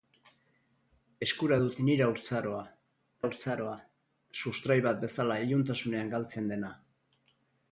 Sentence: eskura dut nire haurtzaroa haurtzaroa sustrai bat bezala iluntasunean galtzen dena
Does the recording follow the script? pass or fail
pass